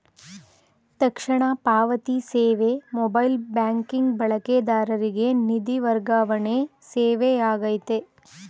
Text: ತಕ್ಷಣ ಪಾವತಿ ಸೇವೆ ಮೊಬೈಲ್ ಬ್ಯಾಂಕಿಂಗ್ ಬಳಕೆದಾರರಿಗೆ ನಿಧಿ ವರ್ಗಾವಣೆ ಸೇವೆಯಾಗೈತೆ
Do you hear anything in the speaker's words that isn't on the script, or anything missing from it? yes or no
no